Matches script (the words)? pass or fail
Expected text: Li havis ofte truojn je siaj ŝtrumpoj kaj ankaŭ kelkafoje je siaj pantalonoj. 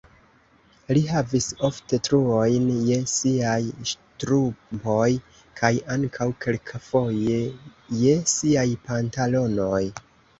pass